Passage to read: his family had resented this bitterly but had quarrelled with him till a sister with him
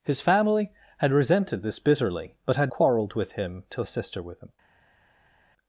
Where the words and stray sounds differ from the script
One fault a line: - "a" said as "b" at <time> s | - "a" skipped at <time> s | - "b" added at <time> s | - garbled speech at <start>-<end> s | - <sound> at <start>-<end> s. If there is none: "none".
none